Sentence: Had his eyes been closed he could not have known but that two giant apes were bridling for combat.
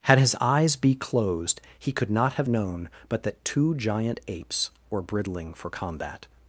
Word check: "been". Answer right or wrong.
wrong